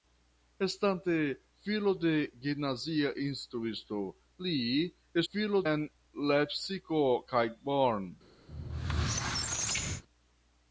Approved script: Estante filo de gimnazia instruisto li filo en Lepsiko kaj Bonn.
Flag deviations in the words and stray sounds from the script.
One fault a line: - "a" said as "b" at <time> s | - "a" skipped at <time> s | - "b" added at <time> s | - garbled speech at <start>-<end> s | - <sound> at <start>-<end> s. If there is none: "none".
- squeak at 8.5-10.0 s